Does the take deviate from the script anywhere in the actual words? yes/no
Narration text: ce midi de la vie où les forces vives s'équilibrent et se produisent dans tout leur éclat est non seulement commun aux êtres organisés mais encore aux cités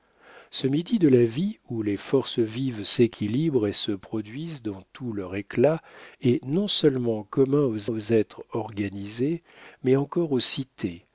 yes